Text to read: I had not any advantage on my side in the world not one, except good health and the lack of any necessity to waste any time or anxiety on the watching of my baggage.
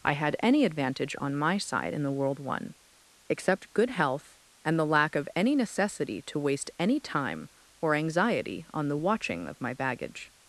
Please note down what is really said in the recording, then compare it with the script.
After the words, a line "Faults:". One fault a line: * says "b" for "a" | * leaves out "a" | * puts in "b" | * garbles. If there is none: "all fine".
I had any advantage on my side in the world one, except good health and the lack of any necessity to waste any time or anxiety on the watching of my baggage.
Faults:
* leaves out "not"
* leaves out "not"